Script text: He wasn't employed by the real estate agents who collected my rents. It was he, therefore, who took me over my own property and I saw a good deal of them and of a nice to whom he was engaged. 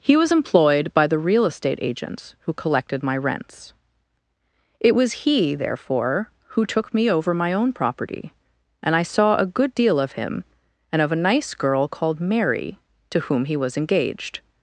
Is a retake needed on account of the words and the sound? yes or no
yes